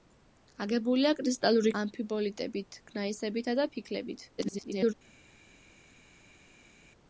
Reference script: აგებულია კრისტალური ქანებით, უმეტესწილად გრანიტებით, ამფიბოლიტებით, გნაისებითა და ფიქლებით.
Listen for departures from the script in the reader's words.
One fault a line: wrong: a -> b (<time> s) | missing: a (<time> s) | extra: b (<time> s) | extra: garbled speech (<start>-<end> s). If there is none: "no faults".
missing: ქანებით უმეტესწილად გრანიტებით (1.7 s)
extra: garbled speech (4.4-4.9 s)